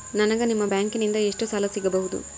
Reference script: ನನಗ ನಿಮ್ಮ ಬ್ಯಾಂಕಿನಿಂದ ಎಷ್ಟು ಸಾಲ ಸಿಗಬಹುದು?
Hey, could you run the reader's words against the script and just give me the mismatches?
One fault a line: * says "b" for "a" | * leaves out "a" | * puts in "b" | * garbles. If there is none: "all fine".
all fine